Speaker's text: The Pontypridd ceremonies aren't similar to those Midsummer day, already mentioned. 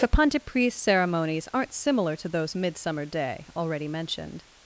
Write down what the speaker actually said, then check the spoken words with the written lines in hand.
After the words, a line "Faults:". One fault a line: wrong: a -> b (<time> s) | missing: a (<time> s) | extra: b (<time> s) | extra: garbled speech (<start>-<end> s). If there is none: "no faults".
The Pontypridd ceremonies aren't similar to those Midsummer day, already mentioned.
Faults:
no faults